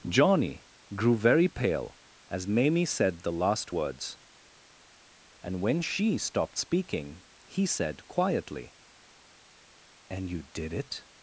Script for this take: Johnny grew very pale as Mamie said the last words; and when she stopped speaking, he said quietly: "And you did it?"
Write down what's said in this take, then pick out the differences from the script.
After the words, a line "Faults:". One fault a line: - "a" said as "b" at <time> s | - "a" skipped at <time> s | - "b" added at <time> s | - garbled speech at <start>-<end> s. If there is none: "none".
Johnny grew very pale as Mamie said the last words; and when she stopped speaking, he said quietly: "And you did it?"
Faults:
none